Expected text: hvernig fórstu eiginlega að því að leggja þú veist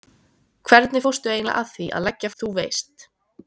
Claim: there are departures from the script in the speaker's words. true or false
false